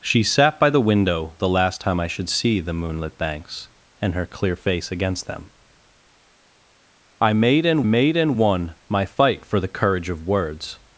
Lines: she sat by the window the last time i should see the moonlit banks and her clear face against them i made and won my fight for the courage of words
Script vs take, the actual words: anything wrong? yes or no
yes